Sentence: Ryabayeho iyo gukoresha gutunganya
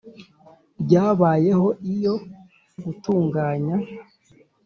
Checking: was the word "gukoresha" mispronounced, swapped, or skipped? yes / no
yes